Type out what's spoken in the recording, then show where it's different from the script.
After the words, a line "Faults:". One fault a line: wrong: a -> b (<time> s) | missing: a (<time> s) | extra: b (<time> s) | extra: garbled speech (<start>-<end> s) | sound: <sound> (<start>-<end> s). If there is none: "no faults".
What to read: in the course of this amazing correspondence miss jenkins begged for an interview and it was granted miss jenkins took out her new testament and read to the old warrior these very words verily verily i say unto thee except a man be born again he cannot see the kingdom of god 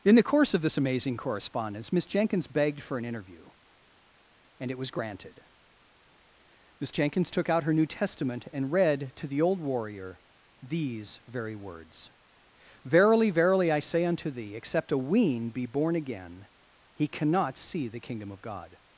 in the course of this amazing correspondence miss jenkins begged for an interview and it was granted miss jenkins took out her new testament and read to the old warrior these very words verily verily i say unto thee except a wean be born again he cannot see the kingdom of god
Faults:
wrong: man -> wean (15.0 s)